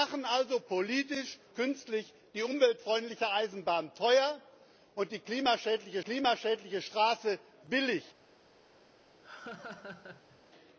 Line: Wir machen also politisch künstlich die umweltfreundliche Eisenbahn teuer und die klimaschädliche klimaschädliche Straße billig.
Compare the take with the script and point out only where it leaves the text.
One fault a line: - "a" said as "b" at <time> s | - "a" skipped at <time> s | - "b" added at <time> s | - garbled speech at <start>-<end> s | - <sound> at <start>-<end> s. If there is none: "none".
- laugh at 9.2-10.4 s